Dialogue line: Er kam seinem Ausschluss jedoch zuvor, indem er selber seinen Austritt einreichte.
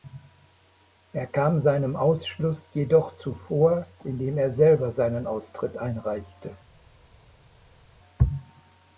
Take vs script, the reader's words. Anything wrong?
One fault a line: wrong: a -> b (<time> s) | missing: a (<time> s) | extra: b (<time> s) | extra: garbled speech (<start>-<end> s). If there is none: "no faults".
no faults